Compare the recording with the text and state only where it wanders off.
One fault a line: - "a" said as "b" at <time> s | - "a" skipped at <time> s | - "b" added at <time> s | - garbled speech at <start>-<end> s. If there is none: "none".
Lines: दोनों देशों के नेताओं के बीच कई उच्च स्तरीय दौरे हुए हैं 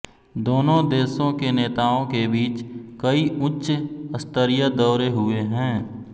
none